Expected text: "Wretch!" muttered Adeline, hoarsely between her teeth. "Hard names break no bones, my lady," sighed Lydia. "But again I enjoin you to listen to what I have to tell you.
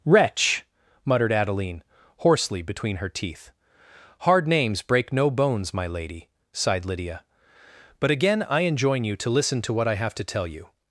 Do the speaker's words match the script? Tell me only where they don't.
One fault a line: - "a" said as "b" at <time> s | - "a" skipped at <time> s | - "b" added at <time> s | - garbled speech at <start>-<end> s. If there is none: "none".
none